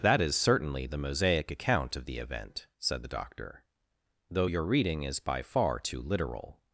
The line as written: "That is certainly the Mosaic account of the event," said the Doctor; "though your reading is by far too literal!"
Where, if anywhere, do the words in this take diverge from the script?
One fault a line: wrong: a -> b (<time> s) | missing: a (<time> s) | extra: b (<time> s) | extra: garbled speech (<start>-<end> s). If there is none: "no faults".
no faults